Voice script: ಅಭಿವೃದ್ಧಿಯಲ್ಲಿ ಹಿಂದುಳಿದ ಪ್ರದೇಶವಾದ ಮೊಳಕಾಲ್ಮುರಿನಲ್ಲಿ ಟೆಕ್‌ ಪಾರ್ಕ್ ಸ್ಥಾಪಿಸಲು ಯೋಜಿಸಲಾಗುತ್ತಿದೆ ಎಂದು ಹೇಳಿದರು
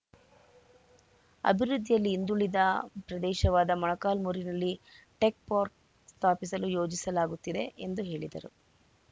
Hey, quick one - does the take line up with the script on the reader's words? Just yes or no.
yes